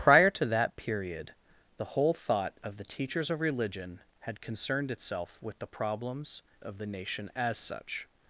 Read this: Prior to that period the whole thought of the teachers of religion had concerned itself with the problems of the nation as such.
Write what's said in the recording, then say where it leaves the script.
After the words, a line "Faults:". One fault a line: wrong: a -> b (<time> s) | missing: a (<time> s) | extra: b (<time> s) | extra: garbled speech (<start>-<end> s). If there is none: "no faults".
Prior to that period the whole thought of the teachers of religion had concerned itself with the problems of the nation as such.
Faults:
no faults